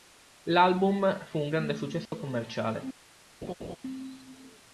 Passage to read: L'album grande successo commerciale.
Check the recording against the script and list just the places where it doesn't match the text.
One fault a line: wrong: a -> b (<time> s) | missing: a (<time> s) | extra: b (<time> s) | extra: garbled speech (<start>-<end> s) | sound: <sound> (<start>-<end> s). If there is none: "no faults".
extra: fu un (1.2 s)
sound: dropout (2.1-2.1 s)
sound: laugh (3.4-3.8 s)